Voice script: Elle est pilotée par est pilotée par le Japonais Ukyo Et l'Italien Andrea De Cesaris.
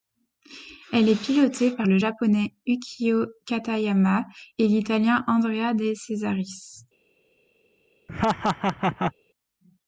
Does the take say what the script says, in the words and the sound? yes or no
no